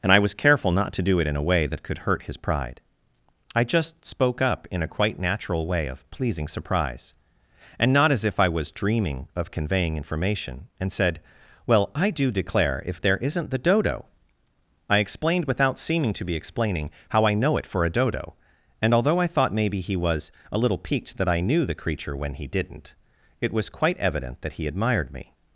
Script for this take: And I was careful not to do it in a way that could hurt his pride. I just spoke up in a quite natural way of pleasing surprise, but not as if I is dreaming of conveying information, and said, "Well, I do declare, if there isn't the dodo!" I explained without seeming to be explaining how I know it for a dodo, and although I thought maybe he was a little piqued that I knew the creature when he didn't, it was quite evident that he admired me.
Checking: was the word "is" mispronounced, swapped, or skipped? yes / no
yes